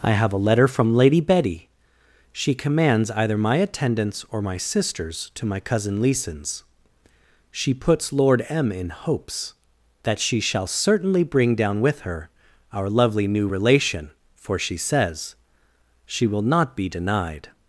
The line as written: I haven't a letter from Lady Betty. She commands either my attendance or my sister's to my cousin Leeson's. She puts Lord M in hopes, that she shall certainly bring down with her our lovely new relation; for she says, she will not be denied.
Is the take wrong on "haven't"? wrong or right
wrong